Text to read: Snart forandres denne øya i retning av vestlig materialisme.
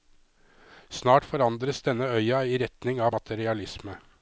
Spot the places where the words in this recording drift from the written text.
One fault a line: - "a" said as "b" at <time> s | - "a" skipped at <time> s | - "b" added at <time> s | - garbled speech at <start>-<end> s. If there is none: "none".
- "vestlig" skipped at 3.1 s